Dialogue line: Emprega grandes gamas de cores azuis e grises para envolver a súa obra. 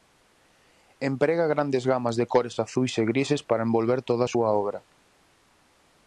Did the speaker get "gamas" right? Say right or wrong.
right